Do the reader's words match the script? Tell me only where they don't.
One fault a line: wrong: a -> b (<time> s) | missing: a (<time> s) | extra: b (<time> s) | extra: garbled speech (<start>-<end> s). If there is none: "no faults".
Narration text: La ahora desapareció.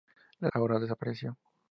no faults